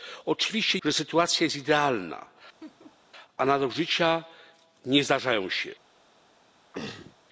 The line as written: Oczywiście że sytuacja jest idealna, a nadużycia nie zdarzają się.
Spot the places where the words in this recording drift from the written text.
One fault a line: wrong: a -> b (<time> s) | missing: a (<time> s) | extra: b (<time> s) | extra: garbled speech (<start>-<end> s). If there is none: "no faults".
no faults